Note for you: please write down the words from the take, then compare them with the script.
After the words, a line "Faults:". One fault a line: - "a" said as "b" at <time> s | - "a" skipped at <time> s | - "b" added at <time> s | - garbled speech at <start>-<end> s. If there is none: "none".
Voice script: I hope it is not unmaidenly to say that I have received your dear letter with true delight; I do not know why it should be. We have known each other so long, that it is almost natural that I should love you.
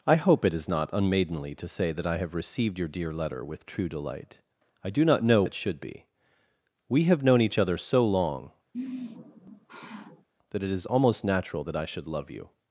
I hope it is not unmaidenly to say that I have received your dear letter with true delight; I do not know it should be. We have known each other so long, that it is almost natural that I should love you.
Faults:
- "why" skipped at 5.4 s